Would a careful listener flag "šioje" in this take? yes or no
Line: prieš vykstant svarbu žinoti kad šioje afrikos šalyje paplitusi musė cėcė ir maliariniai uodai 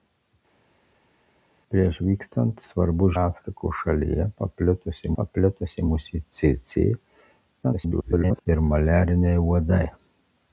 yes